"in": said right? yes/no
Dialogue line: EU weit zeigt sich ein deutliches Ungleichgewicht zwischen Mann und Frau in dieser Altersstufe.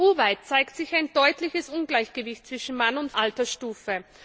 no